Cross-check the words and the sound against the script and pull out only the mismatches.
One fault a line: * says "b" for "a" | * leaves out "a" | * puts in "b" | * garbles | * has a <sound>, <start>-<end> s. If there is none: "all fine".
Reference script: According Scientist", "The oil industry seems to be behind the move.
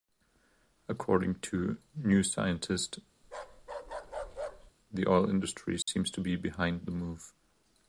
* puts in "to New"
* has a bark, 3.2-4.7 s
* has a dropout, 5.8-5.9 s